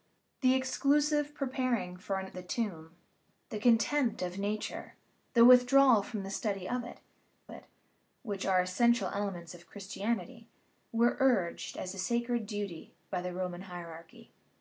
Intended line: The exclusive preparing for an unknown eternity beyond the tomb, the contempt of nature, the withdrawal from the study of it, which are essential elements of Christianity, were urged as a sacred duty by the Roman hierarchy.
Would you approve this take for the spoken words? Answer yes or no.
no